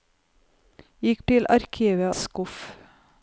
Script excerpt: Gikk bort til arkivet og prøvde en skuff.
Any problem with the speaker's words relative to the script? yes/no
yes